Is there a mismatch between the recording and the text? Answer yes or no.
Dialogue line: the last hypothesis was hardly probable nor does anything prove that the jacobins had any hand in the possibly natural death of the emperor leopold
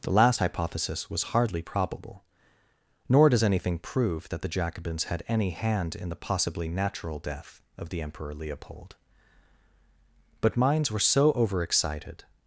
yes